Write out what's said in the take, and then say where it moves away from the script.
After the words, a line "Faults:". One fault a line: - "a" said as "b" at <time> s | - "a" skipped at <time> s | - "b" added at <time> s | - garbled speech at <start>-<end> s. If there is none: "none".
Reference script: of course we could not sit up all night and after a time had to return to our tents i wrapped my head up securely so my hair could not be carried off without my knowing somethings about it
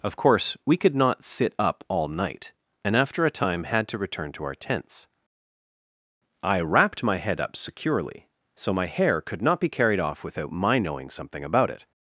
of course we could not sit up all night and after a time had to return to our tents i wrapped my head up securely so my hair could not be carried off without my knowing something about it
Faults:
- "somethings" said as "something" at 11.1 s